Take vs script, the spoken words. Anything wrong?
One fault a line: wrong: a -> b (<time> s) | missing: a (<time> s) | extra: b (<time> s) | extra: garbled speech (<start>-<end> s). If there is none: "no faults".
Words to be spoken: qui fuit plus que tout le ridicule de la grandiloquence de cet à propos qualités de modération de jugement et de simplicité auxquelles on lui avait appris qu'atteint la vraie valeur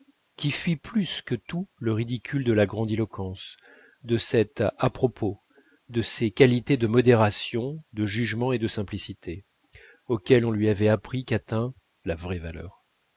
extra: de ces (5.9 s)